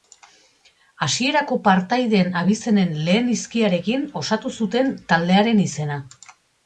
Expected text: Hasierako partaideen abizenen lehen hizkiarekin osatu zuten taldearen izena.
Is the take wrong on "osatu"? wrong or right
right